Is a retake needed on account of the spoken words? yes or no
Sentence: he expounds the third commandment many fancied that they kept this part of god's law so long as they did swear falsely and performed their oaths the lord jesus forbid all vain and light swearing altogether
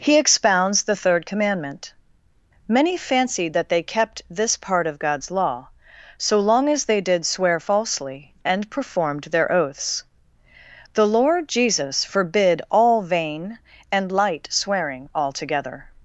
no